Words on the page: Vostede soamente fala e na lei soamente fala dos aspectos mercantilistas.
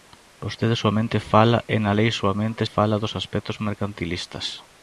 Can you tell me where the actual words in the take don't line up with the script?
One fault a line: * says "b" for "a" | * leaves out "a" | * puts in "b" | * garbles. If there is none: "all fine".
all fine